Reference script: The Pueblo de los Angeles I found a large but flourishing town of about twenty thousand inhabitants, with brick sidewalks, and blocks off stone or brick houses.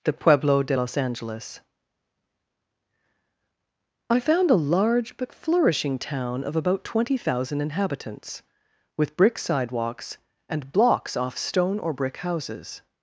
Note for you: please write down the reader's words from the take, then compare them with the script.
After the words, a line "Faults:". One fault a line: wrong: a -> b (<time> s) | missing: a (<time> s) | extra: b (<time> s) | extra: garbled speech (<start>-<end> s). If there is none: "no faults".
The Pueblo de los Angeles I found a large but flourishing town of about twenty thousand inhabitants, with brick sidewalks, and blocks off stone or brick houses.
Faults:
no faults